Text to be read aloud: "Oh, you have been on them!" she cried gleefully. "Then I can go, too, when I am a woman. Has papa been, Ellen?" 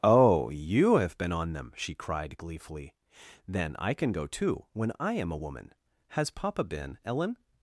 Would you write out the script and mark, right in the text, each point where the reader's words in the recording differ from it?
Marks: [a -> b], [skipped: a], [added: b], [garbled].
"Oh, you have been on them!" she cried gleefully. "Then I can go, too, when I am a woman. Has papa been, Ellen?"